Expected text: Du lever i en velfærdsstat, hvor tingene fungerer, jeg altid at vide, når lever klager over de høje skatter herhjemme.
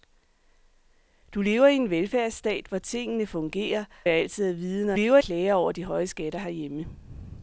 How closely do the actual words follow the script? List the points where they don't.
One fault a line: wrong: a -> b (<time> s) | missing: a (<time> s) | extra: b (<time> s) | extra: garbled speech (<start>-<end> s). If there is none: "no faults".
no faults